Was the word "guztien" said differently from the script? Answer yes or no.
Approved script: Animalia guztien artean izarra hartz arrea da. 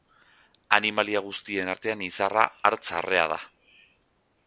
no